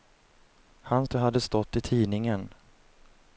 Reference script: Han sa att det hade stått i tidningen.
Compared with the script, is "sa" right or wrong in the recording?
wrong